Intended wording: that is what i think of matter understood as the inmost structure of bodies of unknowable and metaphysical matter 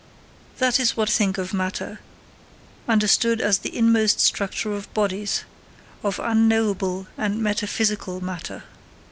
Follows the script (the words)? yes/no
no